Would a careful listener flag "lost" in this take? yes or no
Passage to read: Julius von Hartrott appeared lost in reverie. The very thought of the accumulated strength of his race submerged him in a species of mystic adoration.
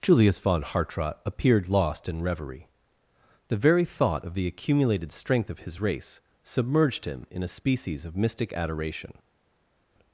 no